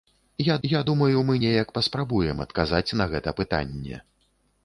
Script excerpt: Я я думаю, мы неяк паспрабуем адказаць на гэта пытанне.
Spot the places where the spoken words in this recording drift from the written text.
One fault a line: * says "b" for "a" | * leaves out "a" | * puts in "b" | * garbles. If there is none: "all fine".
all fine